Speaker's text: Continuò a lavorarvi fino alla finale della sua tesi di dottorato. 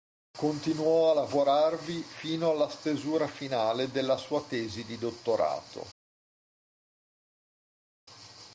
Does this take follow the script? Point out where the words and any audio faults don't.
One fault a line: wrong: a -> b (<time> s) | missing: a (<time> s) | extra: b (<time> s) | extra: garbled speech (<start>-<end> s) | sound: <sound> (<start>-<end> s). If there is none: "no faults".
extra: stesura (2.7 s)